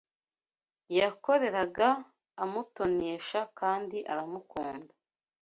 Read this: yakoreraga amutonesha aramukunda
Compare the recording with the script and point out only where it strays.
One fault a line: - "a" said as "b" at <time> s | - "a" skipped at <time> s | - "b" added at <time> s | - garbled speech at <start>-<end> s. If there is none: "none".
- "kandi" added at 3.6 s